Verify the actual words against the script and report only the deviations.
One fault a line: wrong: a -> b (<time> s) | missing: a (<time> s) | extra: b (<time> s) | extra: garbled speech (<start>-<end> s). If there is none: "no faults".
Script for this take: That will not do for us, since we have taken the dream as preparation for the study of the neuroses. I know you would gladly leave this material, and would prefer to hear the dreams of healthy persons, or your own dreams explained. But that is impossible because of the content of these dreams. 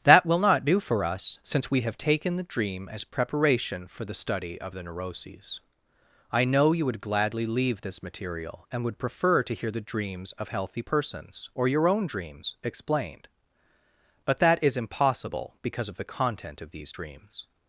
no faults